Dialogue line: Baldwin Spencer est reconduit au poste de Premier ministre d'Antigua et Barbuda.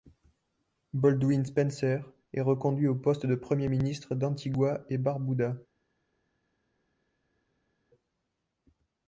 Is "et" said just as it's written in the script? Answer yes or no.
yes